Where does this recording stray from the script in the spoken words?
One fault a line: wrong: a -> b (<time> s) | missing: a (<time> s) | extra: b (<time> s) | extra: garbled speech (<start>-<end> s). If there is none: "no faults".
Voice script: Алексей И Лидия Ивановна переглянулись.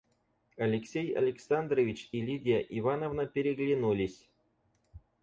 extra: Александрович (1.1 s)